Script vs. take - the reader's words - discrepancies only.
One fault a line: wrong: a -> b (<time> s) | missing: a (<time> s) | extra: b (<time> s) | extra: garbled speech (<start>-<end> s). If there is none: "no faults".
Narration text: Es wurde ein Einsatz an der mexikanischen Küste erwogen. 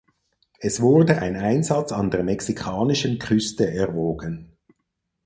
no faults